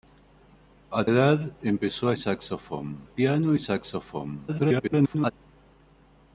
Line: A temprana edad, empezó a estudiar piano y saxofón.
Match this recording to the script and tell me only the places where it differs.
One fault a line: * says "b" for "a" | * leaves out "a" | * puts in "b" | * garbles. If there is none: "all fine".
* leaves out "temprana"
* says "saxofón" for "estudiar"
* garbles